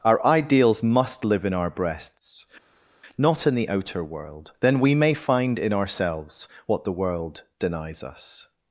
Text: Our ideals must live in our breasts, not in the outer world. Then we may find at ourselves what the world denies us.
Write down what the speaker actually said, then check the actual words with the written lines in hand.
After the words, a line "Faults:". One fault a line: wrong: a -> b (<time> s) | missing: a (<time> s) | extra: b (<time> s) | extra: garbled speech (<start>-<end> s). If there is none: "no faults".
Our ideals must live in our breasts, not in the outer world. Then we may find in ourselves what the world denies us.
Faults:
wrong: at -> in (5.6 s)